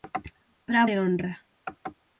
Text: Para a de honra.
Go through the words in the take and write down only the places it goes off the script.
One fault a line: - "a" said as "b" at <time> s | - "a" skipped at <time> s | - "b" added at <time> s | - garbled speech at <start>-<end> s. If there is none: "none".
none